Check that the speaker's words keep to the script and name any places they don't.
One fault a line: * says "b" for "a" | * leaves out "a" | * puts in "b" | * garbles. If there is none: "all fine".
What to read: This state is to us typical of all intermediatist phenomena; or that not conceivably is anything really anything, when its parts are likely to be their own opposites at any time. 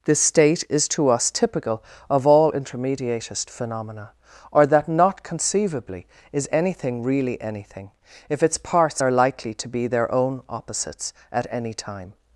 * says "if" for "when"